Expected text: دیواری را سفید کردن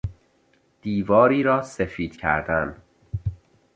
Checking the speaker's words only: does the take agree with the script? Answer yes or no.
yes